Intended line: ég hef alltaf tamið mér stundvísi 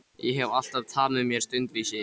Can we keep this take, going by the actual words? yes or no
yes